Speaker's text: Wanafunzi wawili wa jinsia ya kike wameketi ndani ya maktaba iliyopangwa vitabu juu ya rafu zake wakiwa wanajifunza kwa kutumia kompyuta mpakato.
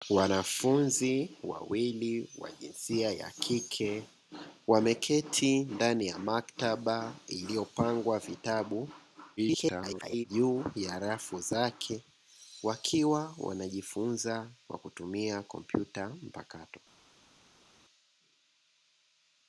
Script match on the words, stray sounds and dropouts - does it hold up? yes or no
no